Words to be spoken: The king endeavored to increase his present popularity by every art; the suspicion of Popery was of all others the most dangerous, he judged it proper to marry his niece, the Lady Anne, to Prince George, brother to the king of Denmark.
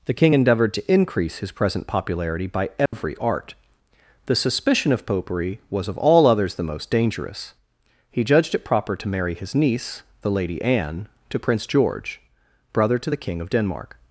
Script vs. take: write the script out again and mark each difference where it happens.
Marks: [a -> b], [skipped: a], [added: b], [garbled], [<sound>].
The king endeavored to increase his present popularity by every [dropout] art; the suspicion of Popery was of all others the most dangerous, he judged it proper to marry his niece, the Lady Anne, to Prince George, brother to the king of Denmark.